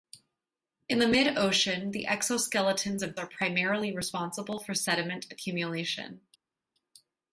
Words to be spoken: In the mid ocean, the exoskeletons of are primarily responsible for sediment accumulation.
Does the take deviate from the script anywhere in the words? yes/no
no